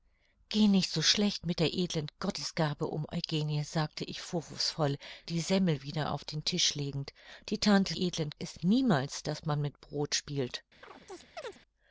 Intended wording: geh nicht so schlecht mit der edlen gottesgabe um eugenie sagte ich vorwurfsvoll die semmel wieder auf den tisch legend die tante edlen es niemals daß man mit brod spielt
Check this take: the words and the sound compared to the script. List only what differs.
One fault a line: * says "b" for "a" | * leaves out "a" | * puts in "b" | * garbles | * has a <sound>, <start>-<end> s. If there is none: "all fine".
* has a chirp, 10.8-11.6 s